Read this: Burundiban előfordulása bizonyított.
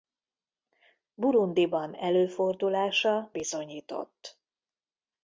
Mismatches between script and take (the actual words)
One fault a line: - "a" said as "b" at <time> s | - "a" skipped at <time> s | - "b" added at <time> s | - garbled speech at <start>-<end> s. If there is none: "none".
none